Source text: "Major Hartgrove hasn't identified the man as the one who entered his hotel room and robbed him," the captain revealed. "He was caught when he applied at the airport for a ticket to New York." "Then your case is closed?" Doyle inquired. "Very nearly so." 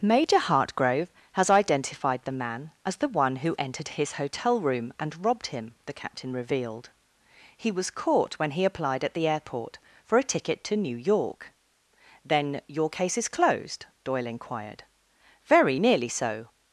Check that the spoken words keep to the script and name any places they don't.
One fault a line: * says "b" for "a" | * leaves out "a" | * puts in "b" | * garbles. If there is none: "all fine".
* says "has" for "hasn't"